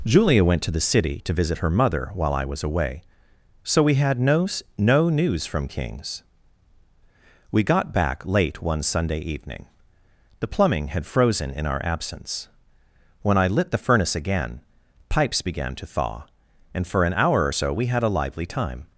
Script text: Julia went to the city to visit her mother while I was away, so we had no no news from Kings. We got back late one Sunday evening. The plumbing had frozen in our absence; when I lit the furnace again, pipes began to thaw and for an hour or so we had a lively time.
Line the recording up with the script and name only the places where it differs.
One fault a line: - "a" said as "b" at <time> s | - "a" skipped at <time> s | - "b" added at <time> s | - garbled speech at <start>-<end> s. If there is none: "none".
none